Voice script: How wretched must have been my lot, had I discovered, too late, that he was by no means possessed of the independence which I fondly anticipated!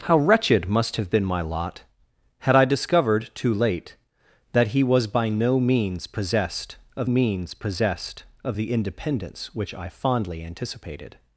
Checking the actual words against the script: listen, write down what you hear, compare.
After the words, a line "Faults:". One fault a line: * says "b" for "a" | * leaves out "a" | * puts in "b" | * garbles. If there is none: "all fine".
How wretched must have been my lot, had I discovered, too late, that he was by no means possessed of means possessed of the independence which I fondly anticipated!
Faults:
* puts in "means possessed of"